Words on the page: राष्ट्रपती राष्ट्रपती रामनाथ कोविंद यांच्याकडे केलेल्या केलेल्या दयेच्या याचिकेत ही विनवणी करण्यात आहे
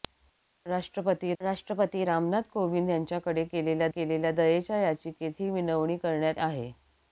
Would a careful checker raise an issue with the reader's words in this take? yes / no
no